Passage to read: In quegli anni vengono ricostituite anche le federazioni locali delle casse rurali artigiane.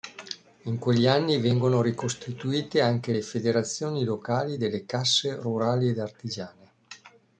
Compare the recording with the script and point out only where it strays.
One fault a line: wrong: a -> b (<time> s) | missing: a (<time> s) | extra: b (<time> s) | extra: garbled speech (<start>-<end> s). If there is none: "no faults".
extra: ed (5.9 s)